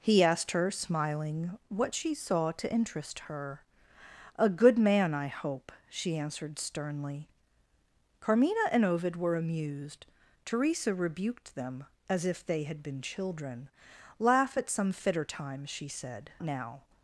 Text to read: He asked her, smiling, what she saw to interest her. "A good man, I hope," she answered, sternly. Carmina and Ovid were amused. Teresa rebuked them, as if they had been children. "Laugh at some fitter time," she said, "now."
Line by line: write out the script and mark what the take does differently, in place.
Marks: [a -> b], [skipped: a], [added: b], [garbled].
He asked her, smiling, what she saw to interest her. "A good man, I hope," she answered, sternly. Carmina and Ovid were amused. Teresa rebuked them, as if they had been children. "Laugh at some fitter time," she said, "now."